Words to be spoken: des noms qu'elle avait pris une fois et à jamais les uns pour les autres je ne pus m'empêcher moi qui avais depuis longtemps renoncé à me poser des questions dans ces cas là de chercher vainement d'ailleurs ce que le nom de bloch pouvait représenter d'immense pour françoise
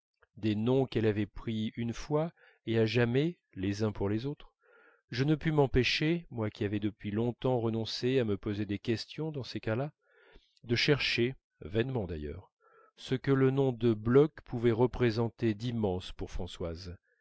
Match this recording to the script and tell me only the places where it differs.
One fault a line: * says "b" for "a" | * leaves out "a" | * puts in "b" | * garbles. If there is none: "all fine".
all fine